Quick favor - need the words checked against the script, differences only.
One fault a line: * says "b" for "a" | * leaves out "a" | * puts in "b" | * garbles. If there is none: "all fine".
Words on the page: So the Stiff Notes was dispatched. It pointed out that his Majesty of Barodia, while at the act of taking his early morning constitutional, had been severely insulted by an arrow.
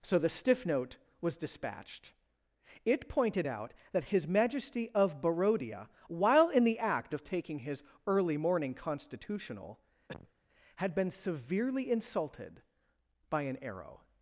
* says "Note" for "Notes"
* says "in" for "at"